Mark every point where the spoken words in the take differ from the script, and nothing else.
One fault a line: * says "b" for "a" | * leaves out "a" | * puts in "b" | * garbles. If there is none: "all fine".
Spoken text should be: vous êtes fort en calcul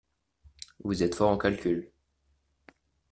all fine